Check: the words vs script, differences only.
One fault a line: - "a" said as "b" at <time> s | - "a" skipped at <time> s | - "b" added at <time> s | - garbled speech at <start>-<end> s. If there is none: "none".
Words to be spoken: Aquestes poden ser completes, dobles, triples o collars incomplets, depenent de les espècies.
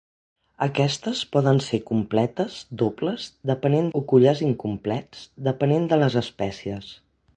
- "triples" said as "depenent" at 3.5 s